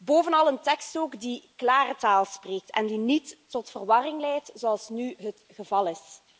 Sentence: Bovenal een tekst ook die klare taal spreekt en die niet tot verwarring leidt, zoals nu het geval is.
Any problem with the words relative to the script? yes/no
no